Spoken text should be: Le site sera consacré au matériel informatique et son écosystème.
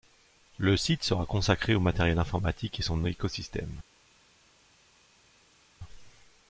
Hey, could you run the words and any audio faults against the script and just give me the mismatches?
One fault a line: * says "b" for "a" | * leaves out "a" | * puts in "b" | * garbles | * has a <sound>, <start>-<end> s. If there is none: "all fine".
all fine